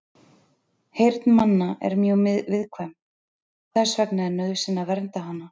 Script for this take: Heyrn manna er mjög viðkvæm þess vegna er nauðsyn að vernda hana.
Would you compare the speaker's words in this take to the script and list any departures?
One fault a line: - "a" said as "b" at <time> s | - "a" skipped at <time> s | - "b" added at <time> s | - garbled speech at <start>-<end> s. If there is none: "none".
none